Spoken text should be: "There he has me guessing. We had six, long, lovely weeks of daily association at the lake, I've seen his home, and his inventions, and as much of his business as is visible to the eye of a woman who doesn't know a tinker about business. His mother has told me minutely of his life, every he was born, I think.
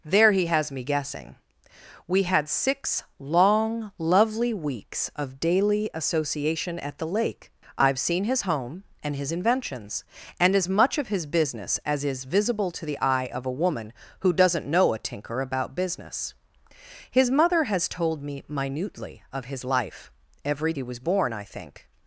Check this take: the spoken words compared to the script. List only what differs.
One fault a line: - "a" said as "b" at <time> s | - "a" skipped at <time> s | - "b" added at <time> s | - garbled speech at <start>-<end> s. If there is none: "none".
none